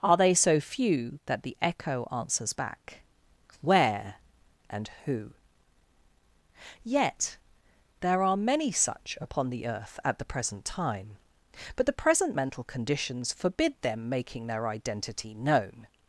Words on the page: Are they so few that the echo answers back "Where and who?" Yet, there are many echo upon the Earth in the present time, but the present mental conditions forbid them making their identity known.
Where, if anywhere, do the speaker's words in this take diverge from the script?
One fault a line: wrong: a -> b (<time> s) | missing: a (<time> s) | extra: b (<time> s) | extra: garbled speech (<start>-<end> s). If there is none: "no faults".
wrong: echo -> such (8.7 s)
wrong: in -> at (10.0 s)